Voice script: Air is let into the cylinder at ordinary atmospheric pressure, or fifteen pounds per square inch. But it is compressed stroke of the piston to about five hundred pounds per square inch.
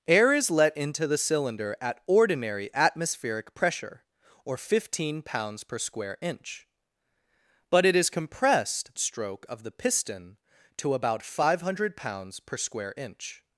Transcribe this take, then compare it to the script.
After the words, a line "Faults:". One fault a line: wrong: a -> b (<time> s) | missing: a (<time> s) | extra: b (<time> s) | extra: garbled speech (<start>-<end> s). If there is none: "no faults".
Air is let into the cylinder at ordinary atmospheric pressure, or fifteen pounds per square inch. But it is compressed stroke of the piston to about five hundred pounds per square inch.
Faults:
no faults